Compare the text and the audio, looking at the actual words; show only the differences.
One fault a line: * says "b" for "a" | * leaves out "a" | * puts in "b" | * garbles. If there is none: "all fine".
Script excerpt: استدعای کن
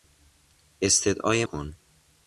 all fine